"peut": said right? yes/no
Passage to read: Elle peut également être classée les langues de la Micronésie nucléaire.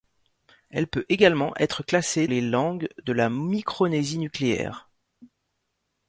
yes